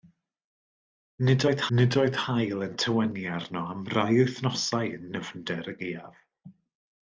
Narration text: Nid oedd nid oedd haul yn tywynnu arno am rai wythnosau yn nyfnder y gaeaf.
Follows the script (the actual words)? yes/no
yes